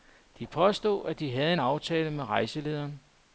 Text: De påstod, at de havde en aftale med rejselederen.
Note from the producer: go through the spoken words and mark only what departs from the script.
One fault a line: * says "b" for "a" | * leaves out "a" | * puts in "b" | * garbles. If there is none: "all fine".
all fine